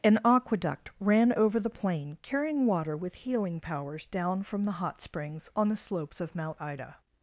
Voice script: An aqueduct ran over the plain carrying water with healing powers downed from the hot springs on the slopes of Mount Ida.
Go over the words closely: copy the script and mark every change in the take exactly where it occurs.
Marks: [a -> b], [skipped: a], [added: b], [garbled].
An aqueduct ran over the plain carrying water with healing powers [downed -> down] from the hot springs on the slopes of Mount Ida.